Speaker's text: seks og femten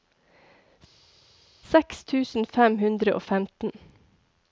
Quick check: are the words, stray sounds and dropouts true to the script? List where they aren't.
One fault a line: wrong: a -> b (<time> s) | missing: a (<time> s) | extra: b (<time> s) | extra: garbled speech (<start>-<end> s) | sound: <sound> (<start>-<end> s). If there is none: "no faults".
extra: tusen fem hundre (2.1 s)